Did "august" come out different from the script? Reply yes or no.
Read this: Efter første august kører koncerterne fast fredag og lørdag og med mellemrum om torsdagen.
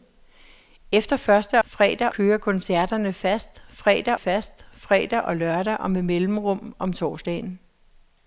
yes